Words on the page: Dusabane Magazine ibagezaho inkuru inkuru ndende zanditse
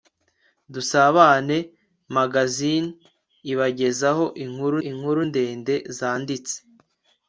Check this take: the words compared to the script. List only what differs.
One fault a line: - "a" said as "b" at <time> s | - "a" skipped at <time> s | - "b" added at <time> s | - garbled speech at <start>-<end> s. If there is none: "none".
none